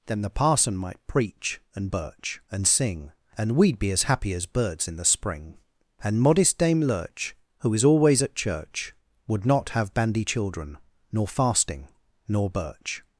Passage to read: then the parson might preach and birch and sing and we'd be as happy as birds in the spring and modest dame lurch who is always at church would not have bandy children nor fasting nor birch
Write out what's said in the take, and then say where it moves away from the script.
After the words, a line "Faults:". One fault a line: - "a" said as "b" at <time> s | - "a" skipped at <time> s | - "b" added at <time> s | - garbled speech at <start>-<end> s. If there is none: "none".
then the parson might preach and birch and sing and we'd be as happy as birds in the spring and modest dame lurch who is always at church would not have bandy children nor fasting nor birch
Faults:
none